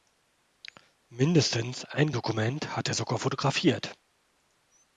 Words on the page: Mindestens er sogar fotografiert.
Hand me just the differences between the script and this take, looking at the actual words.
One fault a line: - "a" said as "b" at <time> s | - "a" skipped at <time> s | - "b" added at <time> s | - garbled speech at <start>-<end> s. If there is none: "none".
- "ein Dokument hat" added at 1.9 s